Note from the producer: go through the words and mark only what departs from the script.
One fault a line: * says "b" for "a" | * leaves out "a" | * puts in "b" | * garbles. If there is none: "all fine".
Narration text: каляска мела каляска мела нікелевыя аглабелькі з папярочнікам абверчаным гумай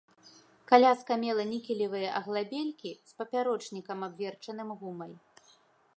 * leaves out "каляска мела"